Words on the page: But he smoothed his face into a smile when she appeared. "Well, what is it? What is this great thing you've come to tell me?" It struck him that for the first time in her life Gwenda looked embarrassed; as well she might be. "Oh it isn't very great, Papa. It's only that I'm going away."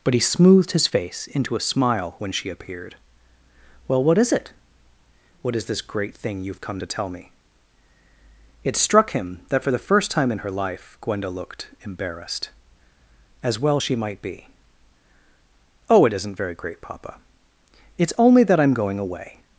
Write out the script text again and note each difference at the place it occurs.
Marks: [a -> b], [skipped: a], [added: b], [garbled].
But he smoothed his face into a smile when she appeared. "Well, what is it? What is this great thing you've come to tell me?" It struck him that for the first time in her life Gwenda looked embarrassed; as well she might be. "Oh it isn't very great, Papa. It's only that I'm going away."